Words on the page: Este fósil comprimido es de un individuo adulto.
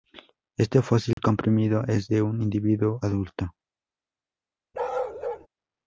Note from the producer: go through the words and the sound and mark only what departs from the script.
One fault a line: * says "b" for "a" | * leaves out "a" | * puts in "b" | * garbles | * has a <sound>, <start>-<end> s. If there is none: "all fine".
* has a dropout, 1.1-1.2 s
* has a bark, 4.7-5.5 s